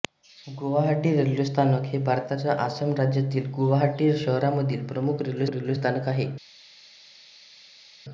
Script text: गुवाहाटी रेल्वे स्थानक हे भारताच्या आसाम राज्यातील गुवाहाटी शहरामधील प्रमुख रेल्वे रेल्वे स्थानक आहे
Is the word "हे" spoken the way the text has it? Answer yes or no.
yes